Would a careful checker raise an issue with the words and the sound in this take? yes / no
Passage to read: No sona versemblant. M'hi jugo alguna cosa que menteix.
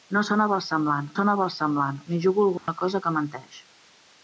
yes